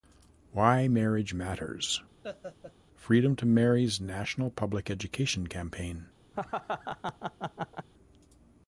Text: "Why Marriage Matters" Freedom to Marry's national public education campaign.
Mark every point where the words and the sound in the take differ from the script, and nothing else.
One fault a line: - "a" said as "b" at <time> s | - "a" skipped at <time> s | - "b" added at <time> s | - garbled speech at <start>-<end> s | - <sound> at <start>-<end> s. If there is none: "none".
- laugh at 2.2-2.7 s
- laugh at 6.3-7.9 s